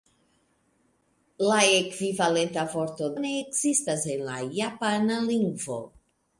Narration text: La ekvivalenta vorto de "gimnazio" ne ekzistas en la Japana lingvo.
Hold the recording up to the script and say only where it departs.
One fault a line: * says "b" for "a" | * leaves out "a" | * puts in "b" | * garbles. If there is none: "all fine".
* leaves out "de gimnazio"